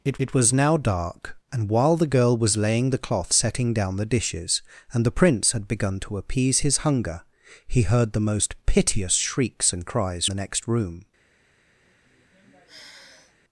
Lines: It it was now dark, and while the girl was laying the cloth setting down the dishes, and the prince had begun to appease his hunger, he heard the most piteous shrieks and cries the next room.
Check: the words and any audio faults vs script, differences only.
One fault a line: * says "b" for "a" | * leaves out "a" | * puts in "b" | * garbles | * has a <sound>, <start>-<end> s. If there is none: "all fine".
* has a sigh, 11.8-13.4 s